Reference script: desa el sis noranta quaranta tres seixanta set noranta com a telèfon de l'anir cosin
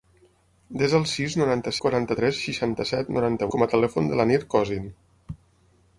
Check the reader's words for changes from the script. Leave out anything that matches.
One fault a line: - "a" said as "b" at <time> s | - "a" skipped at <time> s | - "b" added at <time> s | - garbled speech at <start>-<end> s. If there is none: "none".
none